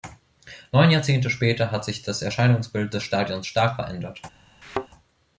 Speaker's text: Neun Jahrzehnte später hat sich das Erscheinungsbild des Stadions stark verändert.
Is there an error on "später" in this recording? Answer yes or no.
no